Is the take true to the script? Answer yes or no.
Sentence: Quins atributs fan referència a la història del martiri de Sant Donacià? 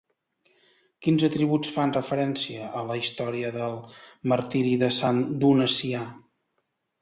yes